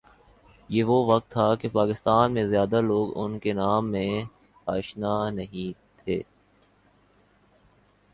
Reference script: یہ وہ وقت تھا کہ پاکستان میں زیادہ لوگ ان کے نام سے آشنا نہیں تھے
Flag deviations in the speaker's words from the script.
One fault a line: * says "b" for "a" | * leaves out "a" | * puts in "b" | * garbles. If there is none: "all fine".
all fine